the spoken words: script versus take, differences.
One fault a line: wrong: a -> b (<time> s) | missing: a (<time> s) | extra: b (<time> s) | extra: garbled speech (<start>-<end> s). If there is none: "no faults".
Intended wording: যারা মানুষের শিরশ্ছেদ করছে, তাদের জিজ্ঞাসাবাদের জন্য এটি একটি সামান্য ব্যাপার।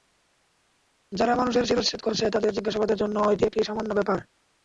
no faults